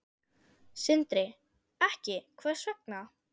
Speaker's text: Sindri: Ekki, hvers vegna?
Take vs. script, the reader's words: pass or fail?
pass